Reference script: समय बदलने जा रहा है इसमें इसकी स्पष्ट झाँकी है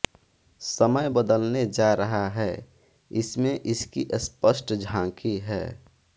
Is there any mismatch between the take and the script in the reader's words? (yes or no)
no